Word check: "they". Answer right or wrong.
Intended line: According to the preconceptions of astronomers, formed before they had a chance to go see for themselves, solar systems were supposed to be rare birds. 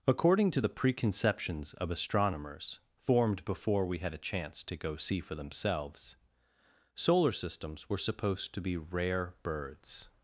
wrong